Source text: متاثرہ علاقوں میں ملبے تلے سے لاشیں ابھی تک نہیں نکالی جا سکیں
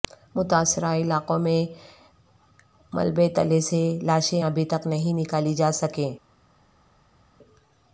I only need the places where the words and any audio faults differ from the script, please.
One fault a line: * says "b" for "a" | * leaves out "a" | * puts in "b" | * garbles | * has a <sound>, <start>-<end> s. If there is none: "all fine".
all fine